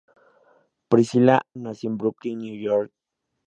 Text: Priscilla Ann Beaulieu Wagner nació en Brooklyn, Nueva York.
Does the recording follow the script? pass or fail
fail